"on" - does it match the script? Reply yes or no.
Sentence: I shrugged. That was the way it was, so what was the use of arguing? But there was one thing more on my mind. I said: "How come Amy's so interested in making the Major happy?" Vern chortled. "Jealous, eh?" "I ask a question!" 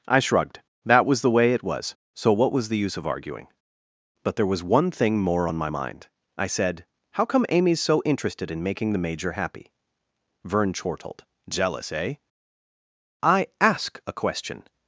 yes